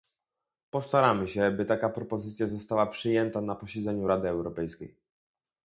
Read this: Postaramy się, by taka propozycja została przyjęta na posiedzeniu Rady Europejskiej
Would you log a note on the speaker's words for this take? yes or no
no